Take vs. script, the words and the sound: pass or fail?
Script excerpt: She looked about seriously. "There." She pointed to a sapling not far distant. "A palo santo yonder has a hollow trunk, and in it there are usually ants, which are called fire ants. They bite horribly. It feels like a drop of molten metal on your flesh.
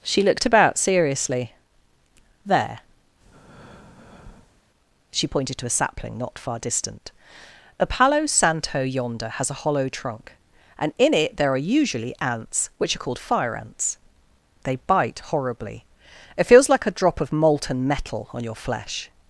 fail